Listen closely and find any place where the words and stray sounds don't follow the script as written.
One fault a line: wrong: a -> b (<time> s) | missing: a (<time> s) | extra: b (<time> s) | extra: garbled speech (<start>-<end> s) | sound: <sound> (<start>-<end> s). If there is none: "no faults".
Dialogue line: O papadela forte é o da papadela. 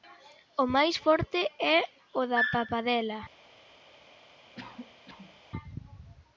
wrong: papadela -> máis (0.8 s)
sound: cough (4.5-5.4 s)